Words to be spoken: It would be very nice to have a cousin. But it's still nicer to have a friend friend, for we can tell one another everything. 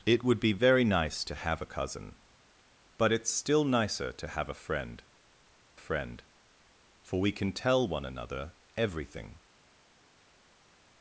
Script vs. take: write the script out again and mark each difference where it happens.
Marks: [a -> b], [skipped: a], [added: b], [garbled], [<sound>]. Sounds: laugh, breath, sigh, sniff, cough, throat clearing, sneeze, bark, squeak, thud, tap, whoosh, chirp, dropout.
It would be very nice to have a cousin. But it's still nicer to have a friend friend, for we can tell one another everything.